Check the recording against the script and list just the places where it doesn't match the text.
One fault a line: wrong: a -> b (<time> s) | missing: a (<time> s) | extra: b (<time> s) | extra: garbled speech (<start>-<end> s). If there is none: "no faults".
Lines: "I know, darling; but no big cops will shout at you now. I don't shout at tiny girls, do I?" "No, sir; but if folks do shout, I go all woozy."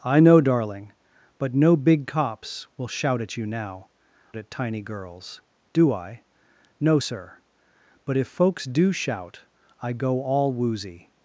missing: I don't shout (3.9 s)